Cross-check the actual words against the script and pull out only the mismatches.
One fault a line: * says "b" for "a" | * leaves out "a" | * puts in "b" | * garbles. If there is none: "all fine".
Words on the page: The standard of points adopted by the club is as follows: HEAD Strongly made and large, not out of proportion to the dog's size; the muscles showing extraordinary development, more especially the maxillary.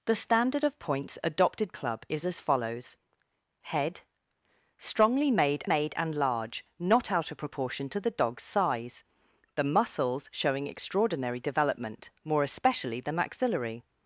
* leaves out "by the"
* puts in "made"